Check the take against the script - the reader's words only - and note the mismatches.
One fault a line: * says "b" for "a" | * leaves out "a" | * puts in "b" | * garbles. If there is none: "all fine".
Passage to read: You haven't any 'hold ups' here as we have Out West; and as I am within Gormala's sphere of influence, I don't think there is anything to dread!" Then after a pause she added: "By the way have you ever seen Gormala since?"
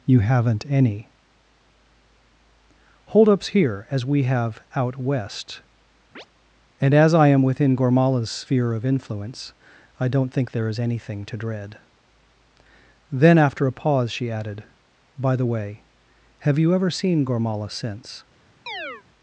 all fine